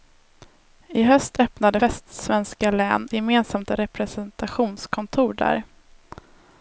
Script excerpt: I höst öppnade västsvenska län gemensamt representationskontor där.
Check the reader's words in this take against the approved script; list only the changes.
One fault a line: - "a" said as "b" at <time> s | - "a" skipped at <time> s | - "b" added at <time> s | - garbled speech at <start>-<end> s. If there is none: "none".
none